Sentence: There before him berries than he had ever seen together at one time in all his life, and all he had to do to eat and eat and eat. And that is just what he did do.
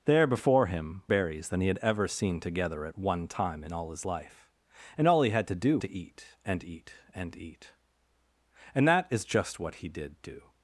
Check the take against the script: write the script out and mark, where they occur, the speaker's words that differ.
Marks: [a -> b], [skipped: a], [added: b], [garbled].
There before him berries than he had ever seen together at one time in all his life, and all he had to do to eat and eat and eat. And that is just what he did do.